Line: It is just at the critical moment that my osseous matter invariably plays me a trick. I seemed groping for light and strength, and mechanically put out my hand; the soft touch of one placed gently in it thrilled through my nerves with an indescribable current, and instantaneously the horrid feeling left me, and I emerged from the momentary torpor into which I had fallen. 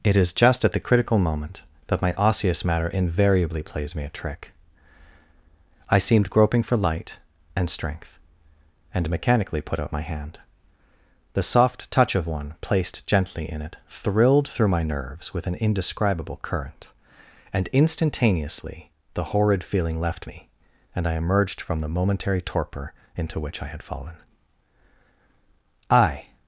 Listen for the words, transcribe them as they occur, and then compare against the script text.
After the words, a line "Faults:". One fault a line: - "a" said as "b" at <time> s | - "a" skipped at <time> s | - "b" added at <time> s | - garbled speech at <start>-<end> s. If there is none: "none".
It is just at the critical moment that my osseous matter invariably plays me a trick. I seemed groping for light and strength, and mechanically put out my hand; the soft touch of one placed gently in it thrilled through my nerves with an indescribable current, and instantaneously the horrid feeling left me, and I emerged from the momentary torpor into which I had fallen. I
Faults:
- "I" added at 25.9 s